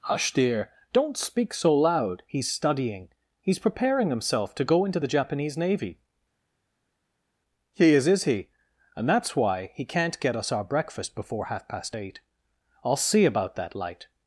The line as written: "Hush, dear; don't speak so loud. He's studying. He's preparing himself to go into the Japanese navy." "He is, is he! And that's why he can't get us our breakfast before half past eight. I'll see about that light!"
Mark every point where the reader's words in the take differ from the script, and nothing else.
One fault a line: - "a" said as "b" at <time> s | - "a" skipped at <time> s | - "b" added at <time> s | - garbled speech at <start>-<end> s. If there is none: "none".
none